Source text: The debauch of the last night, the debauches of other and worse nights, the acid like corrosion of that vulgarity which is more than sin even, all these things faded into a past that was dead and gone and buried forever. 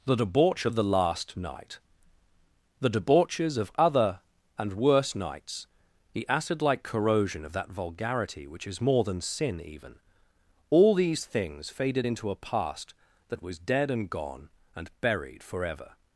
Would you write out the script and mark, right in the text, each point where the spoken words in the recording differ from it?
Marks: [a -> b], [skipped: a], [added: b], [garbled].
The debauch of the last night, the debauches of other and worse nights, the acid like corrosion of that vulgarity which is more than sin even, all these things faded into a past that was dead and gone and buried forever.